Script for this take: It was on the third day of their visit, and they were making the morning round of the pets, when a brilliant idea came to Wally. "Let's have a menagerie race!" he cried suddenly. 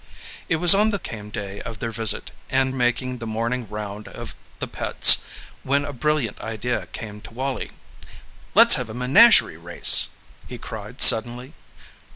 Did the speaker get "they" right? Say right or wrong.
wrong